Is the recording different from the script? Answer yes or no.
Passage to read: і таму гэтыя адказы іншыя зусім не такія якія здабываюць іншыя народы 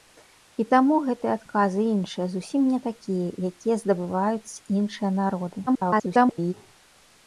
yes